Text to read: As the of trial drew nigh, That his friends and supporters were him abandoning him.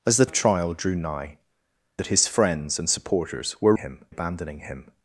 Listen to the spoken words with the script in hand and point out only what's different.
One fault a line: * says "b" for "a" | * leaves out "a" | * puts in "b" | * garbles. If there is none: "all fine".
all fine